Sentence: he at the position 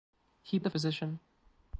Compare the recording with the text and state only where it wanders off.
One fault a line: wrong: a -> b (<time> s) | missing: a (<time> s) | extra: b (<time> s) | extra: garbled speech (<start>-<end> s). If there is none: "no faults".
no faults